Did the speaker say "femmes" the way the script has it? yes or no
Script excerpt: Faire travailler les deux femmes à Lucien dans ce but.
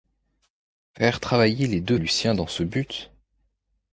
no